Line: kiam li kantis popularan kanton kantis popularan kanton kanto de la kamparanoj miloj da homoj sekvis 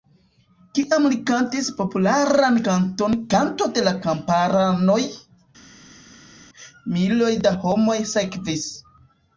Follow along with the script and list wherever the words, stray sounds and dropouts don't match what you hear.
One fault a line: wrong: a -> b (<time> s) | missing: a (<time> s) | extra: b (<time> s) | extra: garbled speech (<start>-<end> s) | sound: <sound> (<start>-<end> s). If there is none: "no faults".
missing: kantis popularan kanton (3.2 s)